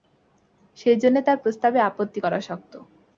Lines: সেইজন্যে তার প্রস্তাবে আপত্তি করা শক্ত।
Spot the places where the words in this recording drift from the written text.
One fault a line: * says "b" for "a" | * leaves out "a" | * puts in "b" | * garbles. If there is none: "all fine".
all fine